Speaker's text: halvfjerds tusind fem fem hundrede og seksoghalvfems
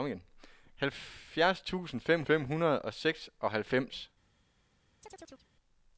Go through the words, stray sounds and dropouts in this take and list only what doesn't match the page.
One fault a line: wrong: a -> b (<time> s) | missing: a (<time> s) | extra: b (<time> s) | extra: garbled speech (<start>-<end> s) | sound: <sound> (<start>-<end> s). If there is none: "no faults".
sound: chirp (5.0-5.5 s)